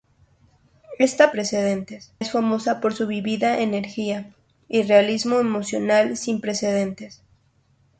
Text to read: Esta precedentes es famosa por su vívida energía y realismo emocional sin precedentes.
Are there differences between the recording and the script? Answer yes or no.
no